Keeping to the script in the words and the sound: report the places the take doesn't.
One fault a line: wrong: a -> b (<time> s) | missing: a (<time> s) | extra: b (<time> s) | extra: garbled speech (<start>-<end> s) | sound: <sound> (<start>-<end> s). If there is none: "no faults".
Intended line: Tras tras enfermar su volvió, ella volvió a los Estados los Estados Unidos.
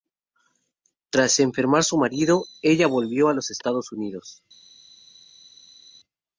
missing: tras (1.4 s)
wrong: volvió -> marido (1.9 s)
missing: los Estados (3.9 s)